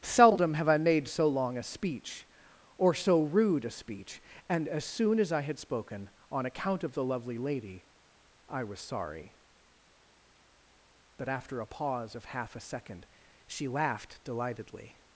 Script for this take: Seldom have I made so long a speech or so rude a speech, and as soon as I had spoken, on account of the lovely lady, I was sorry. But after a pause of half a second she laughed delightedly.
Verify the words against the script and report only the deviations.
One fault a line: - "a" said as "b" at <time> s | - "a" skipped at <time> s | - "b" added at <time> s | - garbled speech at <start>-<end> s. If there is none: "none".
none